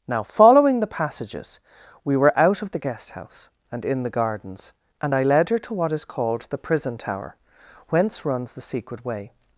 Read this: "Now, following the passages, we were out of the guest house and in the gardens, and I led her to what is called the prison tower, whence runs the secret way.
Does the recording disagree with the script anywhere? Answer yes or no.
no